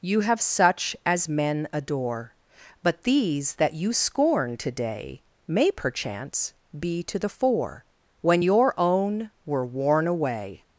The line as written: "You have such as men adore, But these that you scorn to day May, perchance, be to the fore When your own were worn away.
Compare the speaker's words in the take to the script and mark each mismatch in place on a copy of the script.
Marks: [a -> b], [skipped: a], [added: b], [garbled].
"You have such as men adore, But these that you scorn to day May, perchance, be to the fore When your own were worn away.